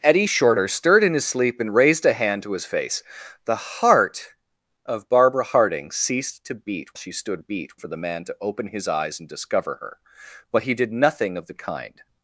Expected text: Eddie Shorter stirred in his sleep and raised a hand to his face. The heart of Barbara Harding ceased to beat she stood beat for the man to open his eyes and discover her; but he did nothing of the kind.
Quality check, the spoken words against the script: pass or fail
pass